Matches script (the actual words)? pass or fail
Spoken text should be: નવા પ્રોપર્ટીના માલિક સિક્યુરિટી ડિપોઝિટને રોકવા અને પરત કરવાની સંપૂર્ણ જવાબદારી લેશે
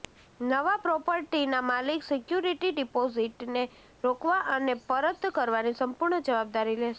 pass